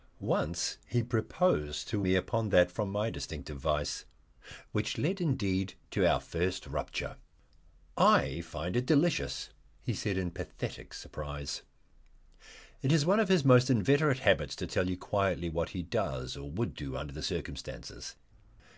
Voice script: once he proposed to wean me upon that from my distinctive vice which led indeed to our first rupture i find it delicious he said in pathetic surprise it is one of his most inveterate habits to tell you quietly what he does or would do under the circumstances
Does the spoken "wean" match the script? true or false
false